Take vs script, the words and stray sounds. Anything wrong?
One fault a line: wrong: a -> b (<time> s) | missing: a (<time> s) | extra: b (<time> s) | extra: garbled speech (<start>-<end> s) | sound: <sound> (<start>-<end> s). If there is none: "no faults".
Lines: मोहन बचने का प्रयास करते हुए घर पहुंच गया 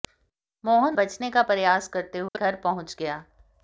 sound: dropout (2.3-2.3 s)